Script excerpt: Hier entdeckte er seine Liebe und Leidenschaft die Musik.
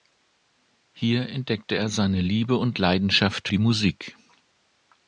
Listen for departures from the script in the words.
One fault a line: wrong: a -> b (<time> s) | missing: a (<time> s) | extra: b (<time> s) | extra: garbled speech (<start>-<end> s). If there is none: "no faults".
no faults